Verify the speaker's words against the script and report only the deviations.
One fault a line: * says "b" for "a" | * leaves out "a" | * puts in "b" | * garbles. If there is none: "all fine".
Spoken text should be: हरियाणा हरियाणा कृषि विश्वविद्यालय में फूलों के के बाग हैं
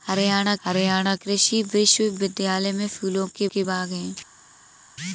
all fine